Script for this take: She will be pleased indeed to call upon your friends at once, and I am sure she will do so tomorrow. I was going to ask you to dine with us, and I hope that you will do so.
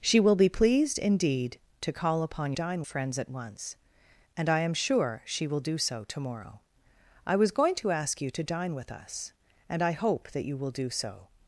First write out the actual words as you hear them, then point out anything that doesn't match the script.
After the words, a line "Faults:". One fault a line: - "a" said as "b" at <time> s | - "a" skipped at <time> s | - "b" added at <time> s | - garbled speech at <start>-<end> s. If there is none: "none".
She will be pleased indeed to call upon dine friends at once, and I am sure she will do so tomorrow. I was going to ask you to dine with us, and I hope that you will do so.
Faults:
- "your" said as "dine" at 2.5 s